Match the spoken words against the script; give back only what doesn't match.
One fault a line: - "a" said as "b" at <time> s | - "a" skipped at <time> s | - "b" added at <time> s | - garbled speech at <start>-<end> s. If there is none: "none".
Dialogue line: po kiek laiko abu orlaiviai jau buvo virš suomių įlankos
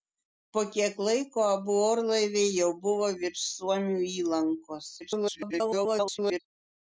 - garbled speech at 5.0-6.4 s